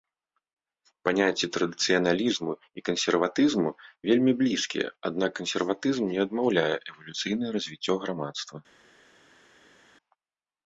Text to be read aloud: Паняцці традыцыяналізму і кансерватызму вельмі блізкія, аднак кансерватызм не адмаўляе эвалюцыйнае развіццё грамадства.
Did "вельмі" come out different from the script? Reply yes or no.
no